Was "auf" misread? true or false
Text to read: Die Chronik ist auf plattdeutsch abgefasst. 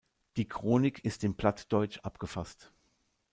true